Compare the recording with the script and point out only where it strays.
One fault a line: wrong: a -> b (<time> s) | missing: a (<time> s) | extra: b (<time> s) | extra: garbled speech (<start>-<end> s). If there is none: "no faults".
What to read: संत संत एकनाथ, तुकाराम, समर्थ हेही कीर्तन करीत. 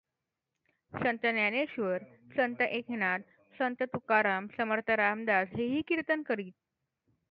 extra: ज्ञानेश्वर (1.2 s)
extra: संत (3.6 s)
extra: रामदास (4.9 s)